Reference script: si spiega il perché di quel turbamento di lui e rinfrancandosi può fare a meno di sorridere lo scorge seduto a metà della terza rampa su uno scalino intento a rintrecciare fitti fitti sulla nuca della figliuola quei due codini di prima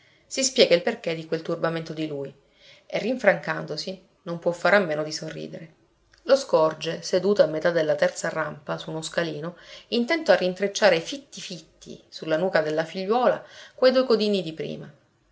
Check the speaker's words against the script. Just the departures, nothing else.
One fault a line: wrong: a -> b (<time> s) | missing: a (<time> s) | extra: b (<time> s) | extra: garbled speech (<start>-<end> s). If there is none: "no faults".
extra: non (4.2 s)